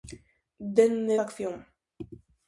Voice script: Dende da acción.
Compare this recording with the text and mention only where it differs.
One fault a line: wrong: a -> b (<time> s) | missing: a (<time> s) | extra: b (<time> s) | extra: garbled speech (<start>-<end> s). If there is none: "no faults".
no faults